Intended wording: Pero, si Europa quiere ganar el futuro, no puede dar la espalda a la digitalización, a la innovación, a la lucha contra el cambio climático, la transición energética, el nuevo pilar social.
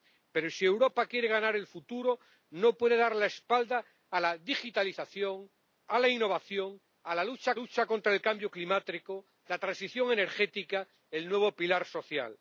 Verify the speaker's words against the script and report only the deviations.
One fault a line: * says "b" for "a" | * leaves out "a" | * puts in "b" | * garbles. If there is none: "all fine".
* puts in "lucha"